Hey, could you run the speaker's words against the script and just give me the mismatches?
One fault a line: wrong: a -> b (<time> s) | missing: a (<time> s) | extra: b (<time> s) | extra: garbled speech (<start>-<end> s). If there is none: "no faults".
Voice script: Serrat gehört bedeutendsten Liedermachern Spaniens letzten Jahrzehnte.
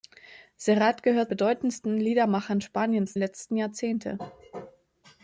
no faults